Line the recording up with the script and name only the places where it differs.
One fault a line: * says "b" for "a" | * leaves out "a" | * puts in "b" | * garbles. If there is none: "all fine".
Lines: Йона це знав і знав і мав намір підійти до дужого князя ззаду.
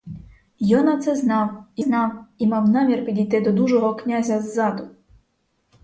all fine